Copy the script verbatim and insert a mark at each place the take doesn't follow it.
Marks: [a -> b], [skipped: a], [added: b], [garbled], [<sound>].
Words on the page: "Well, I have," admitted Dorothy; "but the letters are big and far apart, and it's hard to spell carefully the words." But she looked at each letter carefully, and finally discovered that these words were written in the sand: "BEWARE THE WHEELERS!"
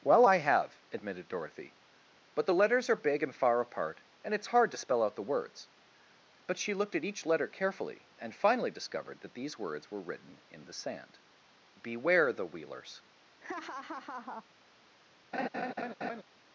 "Well, I have," admitted Dorothy; "but the letters are big and far apart, and it's hard to spell [carefully -> out] the words." But she looked at each letter carefully, and finally discovered that these words were written in the sand: "BEWARE THE WHEELERS!" [laugh] [laugh]